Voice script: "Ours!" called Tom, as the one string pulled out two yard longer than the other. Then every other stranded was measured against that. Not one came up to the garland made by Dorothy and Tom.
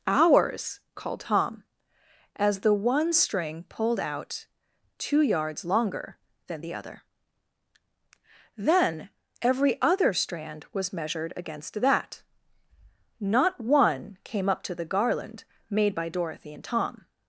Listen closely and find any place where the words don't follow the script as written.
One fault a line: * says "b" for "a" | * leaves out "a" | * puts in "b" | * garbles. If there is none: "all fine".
* says "yards" for "yard"
* says "strand" for "stranded"